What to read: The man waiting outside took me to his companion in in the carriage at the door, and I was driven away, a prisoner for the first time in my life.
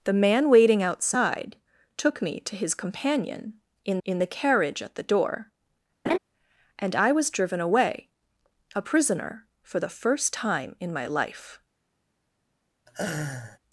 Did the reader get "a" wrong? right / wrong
right